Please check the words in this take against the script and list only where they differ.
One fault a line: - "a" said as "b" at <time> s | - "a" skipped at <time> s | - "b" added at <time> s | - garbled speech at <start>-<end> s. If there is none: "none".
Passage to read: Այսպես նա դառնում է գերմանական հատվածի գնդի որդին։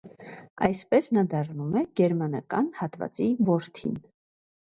- "գնդի" skipped at 3.3 s